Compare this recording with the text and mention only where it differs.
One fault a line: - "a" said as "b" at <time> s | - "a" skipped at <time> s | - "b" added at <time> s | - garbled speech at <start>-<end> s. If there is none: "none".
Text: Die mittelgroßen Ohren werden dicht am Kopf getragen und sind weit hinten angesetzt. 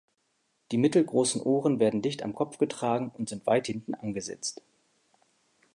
none